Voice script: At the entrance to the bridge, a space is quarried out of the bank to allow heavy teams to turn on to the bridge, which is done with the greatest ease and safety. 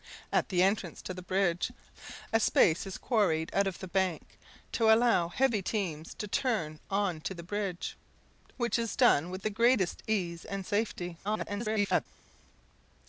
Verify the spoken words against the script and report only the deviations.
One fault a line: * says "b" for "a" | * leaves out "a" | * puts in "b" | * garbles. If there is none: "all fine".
* garbles